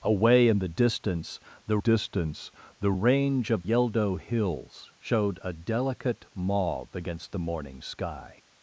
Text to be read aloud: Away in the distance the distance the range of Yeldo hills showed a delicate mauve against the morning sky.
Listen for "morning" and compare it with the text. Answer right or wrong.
right